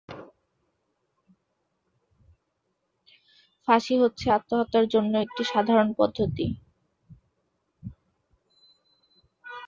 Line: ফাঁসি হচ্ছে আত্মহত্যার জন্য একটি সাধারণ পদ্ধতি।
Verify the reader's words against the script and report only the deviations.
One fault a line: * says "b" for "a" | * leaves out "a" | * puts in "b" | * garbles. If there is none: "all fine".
all fine